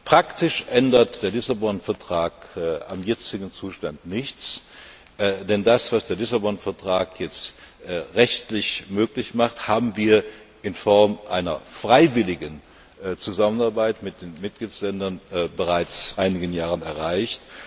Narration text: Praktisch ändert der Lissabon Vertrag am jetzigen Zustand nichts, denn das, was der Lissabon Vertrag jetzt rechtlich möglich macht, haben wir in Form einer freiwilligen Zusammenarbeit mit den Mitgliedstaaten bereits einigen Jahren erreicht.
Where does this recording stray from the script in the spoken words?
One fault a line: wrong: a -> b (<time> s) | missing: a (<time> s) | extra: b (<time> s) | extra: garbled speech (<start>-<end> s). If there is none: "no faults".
no faults